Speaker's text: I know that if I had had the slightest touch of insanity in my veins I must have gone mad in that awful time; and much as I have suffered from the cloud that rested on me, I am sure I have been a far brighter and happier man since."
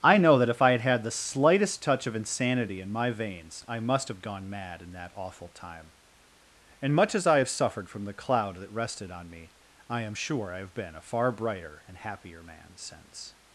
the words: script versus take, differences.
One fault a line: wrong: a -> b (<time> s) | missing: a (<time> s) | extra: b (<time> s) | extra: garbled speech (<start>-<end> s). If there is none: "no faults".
no faults